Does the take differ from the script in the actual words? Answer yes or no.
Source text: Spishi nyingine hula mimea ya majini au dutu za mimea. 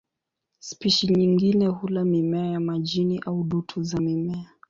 no